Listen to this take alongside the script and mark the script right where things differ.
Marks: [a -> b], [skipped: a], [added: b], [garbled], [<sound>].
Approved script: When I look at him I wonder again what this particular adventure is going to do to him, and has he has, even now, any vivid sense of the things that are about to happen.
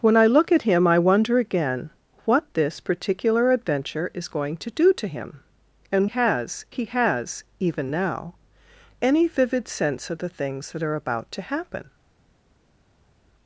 When I look at him I wonder again what this particular adventure is going to do to him, and has he has, even now, any vivid sense of the things that are about to happen.